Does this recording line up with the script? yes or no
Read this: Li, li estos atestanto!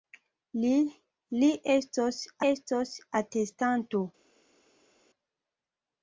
no